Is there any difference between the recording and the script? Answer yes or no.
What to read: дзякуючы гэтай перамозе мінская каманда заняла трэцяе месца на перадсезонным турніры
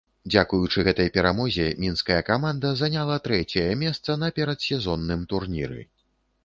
no